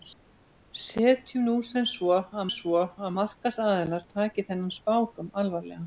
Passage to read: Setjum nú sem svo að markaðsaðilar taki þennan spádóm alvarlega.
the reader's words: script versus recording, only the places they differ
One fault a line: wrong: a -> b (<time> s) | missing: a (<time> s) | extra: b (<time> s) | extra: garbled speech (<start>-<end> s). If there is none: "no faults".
extra: svo að (2.5 s)